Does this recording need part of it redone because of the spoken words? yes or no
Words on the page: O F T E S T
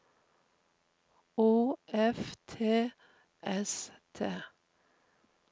yes